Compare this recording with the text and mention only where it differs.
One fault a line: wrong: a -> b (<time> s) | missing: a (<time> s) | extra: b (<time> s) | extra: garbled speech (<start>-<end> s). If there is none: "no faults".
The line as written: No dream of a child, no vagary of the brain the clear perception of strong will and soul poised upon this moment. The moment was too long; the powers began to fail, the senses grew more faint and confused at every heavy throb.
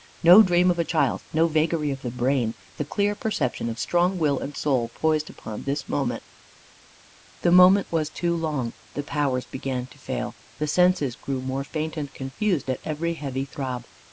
no faults